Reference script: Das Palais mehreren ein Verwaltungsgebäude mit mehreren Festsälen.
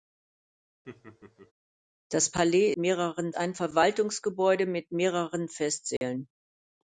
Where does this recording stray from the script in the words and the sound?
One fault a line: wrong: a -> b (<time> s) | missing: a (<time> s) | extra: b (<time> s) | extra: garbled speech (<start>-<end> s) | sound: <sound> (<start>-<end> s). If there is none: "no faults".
sound: laugh (0.8-1.5 s)
sound: dropout (6.0-6.0 s)